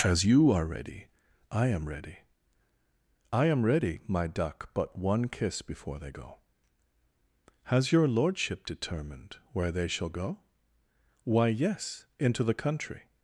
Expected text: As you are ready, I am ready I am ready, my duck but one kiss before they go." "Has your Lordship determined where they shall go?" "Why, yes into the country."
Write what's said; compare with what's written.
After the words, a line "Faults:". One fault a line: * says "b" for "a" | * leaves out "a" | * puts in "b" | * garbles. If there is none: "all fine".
As you are ready, I am ready I am ready, my duck but one kiss before they go." "Has your Lordship determined where they shall go?" "Why, yes into the country."
Faults:
all fine